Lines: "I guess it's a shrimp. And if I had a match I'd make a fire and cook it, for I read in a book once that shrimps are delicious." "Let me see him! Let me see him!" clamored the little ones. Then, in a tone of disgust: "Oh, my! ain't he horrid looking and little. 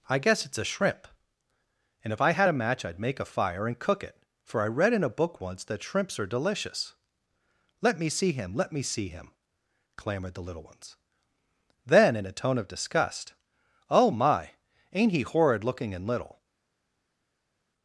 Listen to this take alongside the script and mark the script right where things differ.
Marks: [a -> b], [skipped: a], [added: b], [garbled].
"I guess it's a shrimp. And if I had a match I'd make a fire and cook it, for I read in a book once that shrimps are delicious." "Let me see him! Let me see him!" clamored the little ones. Then, in a tone of disgust: "Oh, my! ain't he horrid looking and little.